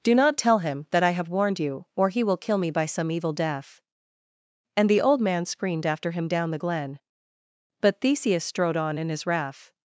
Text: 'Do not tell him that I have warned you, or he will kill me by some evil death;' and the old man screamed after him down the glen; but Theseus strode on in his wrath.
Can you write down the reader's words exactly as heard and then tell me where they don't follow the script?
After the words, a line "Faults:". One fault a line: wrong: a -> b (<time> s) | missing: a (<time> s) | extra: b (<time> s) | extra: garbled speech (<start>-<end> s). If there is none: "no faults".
'Do not tell him that I have warned you, or he will kill me by some evil death;' and the old man screamed after him down the glen; but Theseus strode on in his wrath.
Faults:
no faults